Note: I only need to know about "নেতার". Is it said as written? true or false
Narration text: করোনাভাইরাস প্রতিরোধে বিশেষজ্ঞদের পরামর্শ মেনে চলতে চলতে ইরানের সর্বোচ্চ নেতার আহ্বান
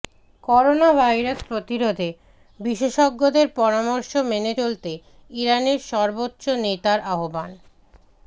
true